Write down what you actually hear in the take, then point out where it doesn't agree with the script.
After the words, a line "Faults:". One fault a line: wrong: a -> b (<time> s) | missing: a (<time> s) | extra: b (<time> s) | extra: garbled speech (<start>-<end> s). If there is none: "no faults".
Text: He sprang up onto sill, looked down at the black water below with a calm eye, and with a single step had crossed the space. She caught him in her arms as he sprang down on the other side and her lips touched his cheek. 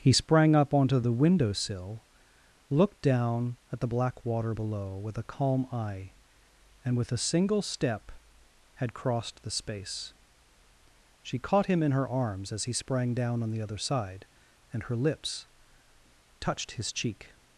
He sprang up onto the window sill, looked down at the black water below with a calm eye, and with a single step had crossed the space. She caught him in her arms as he sprang down on the other side and her lips touched his cheek.
Faults:
extra: the window (1.0 s)